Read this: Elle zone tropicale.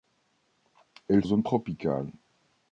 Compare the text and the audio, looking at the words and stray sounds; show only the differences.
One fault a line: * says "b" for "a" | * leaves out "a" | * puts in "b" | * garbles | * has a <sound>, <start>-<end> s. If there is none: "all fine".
all fine